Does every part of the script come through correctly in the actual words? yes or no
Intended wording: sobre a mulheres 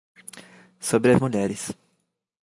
yes